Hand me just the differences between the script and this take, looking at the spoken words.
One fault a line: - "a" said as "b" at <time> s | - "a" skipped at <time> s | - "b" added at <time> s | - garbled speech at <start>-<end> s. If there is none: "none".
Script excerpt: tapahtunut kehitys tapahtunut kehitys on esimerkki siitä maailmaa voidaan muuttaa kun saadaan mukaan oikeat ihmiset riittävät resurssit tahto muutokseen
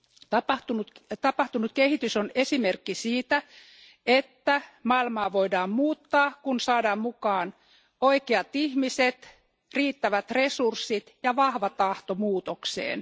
- "tapahtunut kehitys" skipped at 2.2 s
- "että" added at 4.0 s
- "ja vahva" added at 11.2 s